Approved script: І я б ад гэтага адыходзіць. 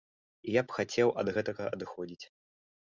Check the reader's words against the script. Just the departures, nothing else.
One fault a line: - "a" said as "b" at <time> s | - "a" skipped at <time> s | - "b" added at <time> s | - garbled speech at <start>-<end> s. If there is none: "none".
- "хацеў" added at 0.8 s